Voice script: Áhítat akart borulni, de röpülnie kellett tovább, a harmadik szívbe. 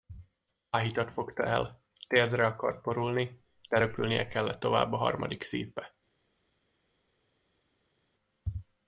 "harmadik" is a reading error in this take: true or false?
false